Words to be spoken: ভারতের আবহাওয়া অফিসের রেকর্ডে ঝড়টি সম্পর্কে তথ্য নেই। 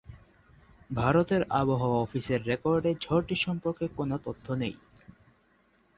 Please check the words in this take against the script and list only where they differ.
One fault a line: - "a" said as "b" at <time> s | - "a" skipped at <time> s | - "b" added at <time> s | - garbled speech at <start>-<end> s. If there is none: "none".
- "কোন" added at 4.0 s